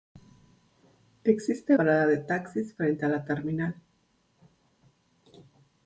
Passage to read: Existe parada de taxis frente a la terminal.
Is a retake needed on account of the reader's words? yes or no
no